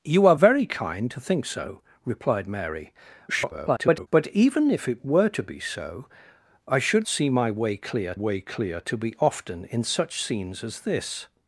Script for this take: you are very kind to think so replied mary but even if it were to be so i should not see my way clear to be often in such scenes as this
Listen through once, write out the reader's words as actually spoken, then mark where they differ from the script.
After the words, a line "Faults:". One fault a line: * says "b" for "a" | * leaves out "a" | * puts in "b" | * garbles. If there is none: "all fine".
you are very kind to think so replied mary [garbled] but even if it were to be so i should see my way clear way clear to be often in such scenes as this
Faults:
* garbles
* leaves out "not"
* puts in "way clear"